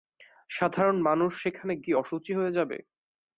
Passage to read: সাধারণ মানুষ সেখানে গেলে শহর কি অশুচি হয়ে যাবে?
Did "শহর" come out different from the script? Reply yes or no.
yes